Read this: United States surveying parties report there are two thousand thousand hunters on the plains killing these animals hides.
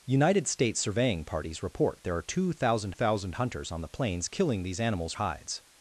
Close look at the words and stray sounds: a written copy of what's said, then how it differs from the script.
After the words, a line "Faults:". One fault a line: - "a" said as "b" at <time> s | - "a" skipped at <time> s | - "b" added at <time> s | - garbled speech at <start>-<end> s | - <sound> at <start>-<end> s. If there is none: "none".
United States surveying parties report there are two thousand thousand hunters on the plains killing these animals hides.
Faults:
none